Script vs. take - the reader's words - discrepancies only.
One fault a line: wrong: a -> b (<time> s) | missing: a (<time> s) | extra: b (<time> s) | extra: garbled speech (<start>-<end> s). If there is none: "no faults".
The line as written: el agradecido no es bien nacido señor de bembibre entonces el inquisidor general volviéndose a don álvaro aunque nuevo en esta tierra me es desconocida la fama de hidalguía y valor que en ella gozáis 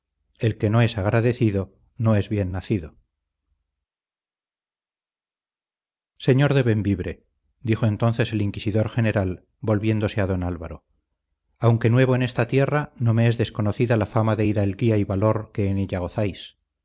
extra: que no es (0.6 s)
extra: dijo (7.6 s)
extra: no (13.0 s)